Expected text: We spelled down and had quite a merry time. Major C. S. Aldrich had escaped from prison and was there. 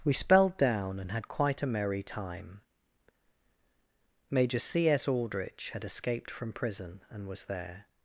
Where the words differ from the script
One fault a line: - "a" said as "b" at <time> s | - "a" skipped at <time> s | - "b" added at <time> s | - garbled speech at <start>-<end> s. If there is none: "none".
none